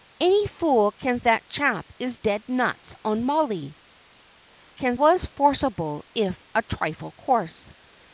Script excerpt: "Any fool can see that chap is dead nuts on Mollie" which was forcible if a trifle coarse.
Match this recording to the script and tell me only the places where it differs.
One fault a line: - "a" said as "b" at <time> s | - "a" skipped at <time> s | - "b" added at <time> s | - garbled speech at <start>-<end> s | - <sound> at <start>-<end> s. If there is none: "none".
- "see" skipped at 1.2 s
- "which" said as "can" at 4.7 s